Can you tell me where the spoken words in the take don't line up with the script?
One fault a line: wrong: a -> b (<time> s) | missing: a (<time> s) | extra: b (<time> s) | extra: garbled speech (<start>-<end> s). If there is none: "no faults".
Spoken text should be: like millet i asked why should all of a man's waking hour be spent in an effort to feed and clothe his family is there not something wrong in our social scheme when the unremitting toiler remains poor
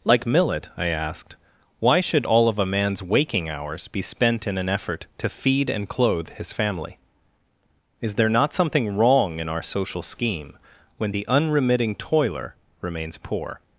wrong: hour -> hours (3.5 s)